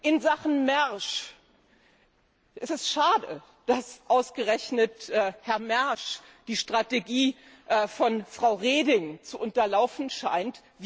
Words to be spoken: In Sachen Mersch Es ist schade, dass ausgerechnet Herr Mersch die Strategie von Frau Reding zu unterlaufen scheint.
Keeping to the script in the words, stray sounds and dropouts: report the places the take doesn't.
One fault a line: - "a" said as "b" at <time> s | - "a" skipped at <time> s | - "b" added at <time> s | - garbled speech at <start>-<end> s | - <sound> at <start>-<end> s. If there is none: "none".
none